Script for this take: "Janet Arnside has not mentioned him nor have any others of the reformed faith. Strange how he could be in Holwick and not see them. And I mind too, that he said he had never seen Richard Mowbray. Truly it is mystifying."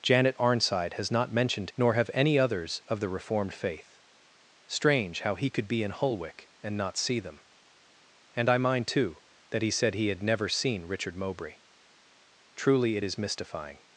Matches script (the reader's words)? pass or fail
fail